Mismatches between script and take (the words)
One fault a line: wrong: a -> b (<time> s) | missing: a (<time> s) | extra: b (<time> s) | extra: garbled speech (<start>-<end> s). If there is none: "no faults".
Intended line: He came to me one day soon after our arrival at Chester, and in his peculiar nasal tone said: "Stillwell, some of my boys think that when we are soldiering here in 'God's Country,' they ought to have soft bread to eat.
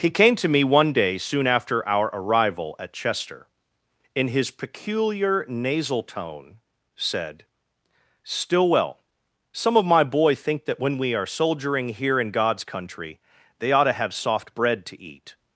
missing: and (3.5 s)
wrong: boys -> boy (10.0 s)